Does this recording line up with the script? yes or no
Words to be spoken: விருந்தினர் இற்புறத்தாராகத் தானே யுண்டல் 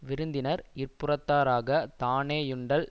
yes